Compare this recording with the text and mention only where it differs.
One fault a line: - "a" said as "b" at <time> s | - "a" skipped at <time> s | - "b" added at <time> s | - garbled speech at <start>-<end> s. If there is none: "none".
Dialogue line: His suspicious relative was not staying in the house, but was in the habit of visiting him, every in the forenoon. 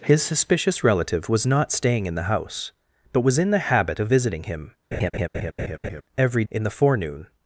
none